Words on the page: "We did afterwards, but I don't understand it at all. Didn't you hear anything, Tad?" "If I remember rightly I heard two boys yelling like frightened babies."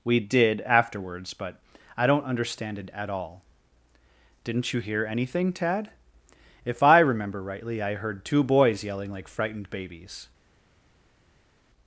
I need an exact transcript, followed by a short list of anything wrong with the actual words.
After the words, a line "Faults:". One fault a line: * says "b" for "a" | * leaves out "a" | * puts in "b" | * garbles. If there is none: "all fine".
"We did afterwards, but I don't understand it at all. Didn't you hear anything, Tad?" "If I remember rightly I heard two boys yelling like frightened babies."
Faults:
all fine